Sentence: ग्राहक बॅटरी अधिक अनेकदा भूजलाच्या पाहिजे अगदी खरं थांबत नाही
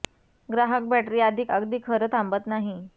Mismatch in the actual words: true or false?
true